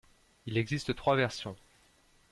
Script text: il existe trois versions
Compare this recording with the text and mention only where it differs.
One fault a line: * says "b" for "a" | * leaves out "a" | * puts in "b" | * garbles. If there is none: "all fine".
all fine